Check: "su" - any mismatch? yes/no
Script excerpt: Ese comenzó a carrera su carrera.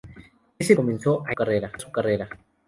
no